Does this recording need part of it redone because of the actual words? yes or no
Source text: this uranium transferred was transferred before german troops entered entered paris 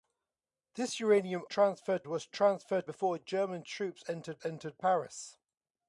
no